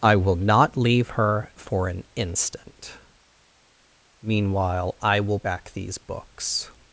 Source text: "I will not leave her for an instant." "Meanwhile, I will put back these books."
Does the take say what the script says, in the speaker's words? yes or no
no